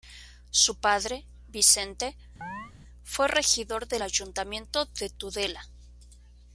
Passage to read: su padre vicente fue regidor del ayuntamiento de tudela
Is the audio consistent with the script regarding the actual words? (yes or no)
yes